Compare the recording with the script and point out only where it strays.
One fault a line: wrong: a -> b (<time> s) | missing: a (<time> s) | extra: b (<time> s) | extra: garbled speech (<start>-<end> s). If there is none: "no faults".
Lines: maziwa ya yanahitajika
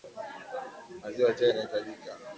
extra: chai (1.3 s)